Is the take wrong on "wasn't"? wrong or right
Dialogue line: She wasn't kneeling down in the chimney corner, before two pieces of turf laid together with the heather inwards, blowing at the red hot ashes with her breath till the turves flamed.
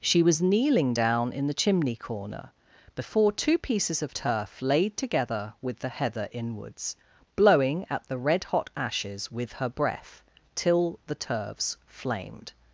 wrong